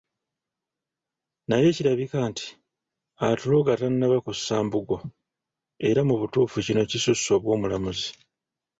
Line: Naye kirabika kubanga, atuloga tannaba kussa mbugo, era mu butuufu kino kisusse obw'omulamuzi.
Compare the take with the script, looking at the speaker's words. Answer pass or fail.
fail